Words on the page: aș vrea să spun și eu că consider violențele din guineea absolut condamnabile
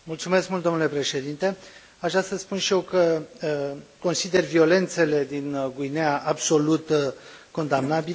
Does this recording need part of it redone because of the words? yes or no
no